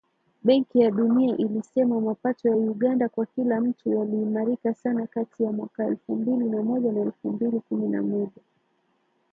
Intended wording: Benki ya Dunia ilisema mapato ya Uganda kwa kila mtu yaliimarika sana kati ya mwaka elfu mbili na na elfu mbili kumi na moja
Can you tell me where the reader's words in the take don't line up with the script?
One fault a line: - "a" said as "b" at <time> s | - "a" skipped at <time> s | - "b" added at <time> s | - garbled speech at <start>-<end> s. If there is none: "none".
- "moja" added at 6.6 s